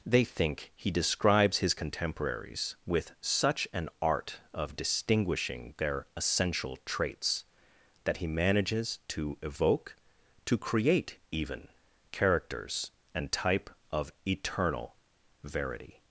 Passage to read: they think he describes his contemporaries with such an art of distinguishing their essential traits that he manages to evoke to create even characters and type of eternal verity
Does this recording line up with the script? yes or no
yes